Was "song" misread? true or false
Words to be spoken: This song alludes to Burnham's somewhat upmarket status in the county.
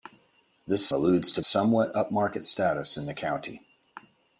true